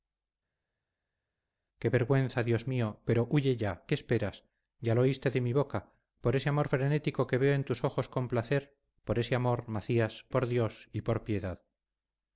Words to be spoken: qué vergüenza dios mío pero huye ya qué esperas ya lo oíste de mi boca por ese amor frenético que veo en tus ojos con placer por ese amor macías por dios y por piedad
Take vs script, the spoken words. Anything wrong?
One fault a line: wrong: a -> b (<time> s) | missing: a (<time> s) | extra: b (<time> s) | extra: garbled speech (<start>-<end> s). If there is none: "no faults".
no faults